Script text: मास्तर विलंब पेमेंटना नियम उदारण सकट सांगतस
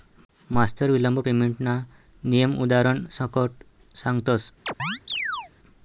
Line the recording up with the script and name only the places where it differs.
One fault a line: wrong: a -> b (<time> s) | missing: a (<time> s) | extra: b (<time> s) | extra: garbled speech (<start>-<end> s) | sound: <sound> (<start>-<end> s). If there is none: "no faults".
sound: chirp (4.7-5.5 s)